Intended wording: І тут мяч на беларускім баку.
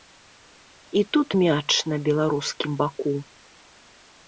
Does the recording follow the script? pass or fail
pass